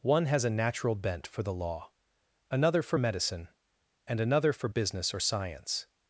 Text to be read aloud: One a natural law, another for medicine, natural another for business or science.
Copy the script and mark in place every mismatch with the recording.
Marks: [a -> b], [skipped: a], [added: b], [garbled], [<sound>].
One [added: has] a natural [added: bent for the] law, another for medicine, [natural -> and] another for business or science.